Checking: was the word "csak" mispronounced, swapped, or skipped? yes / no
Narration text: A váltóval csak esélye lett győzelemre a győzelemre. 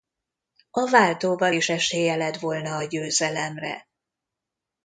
yes